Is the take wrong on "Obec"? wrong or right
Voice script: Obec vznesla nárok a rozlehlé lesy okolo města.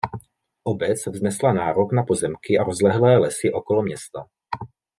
right